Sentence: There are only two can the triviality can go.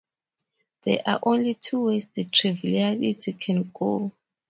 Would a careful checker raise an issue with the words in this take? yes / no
yes